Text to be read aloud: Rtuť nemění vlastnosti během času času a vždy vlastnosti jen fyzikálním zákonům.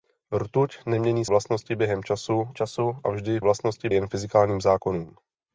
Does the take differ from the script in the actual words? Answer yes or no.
no